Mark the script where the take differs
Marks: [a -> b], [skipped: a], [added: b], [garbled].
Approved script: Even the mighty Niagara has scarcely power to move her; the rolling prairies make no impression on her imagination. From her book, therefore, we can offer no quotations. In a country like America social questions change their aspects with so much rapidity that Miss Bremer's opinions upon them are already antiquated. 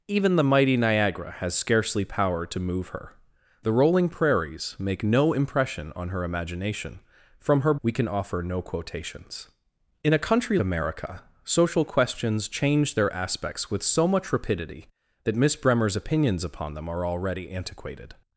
Even the mighty Niagara has scarcely power to move her; the rolling prairies make no impression on her imagination. From her [skipped: book, therefore,] we can offer no quotations. In a country [skipped: like] America social questions change their aspects with so much rapidity that Miss Bremer's opinions upon them are already antiquated.